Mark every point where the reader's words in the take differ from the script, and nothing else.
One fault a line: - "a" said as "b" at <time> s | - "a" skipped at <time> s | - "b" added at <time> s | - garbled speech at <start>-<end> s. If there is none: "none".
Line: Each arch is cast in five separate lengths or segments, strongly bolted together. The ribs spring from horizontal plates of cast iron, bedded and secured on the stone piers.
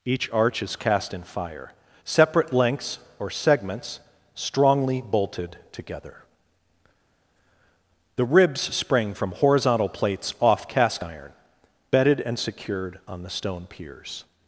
- "five" said as "fire" at 1.2 s
- "of" said as "off" at 10.4 s